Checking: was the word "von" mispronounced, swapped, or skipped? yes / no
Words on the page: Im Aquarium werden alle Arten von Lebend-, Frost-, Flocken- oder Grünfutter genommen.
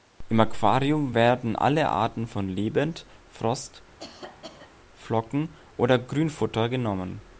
no